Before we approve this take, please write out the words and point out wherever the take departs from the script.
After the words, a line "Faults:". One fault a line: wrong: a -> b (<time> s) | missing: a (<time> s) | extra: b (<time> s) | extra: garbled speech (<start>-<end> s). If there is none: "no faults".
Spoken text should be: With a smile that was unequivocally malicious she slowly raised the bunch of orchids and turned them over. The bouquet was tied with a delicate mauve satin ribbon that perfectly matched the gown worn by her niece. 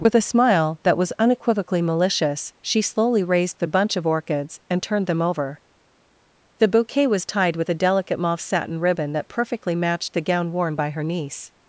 With a smile that was unequivocally malicious she slowly raised the bunch of orchids and turned them over. The bouquet was tied with a delicate mauve satin ribbon that perfectly matched the gown worn by her niece.
Faults:
no faults